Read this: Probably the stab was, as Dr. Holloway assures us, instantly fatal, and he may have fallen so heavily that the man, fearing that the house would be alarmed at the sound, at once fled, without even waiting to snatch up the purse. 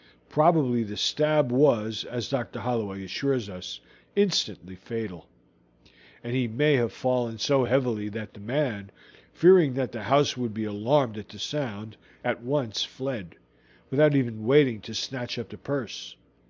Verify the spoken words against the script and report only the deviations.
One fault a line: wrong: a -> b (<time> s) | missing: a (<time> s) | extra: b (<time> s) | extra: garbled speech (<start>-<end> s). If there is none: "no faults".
no faults